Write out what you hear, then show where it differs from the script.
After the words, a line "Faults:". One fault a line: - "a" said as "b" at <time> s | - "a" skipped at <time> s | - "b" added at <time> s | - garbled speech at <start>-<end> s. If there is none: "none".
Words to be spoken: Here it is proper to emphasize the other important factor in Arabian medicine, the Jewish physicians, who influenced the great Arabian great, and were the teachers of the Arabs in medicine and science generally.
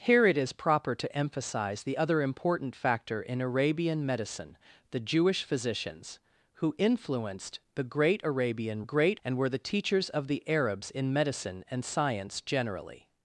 Here it is proper to emphasize the other important factor in Arabian medicine, the Jewish physicians, who influenced the great Arabian great, and were the teachers of the Arabs in medicine and science generally.
Faults:
none